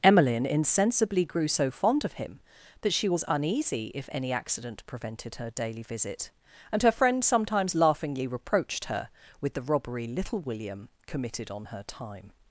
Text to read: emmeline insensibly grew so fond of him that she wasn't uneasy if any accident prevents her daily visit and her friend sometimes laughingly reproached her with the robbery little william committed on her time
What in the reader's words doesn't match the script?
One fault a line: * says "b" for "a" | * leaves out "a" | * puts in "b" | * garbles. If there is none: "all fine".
* says "was" for "wasn't"
* says "prevented" for "prevents"